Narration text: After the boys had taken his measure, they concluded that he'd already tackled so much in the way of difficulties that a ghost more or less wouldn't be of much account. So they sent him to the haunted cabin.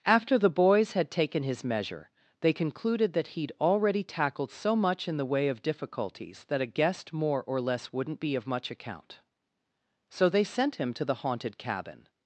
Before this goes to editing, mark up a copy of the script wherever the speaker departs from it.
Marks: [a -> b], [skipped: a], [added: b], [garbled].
After the boys had taken his measure, they concluded that he'd already tackled so much in the way of difficulties that a [ghost -> guest] more or less wouldn't be of much account. So they sent him to the haunted cabin.